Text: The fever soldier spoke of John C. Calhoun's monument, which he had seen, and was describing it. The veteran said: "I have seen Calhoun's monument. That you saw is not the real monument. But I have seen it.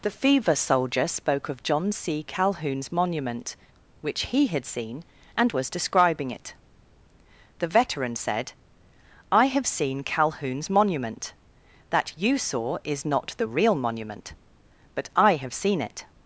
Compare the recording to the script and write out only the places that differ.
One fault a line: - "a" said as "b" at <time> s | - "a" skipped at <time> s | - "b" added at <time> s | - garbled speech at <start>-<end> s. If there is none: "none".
none